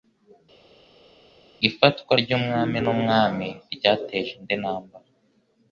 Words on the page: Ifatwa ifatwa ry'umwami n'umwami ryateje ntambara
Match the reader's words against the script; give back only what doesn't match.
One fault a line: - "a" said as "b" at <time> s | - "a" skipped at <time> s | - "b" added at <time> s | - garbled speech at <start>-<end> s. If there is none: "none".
- "ifatwa" skipped at 2.1 s
- "indi" added at 4.4 s